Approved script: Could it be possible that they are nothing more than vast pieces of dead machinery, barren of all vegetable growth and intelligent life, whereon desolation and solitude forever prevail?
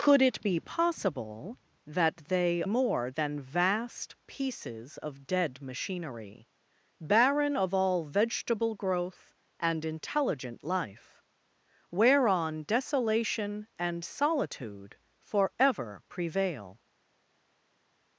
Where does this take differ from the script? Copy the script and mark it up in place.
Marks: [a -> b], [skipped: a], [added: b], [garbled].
Could it be possible that they [skipped: are nothing] more than vast pieces of dead machinery, barren of all vegetable growth and intelligent life, whereon desolation and solitude forever prevail?